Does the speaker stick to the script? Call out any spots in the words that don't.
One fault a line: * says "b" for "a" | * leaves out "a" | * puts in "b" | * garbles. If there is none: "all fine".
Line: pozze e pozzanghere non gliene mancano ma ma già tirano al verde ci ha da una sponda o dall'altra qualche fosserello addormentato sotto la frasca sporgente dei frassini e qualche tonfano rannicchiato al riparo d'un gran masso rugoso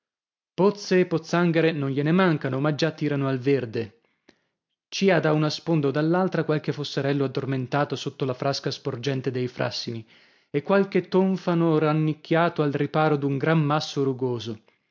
* leaves out "ma"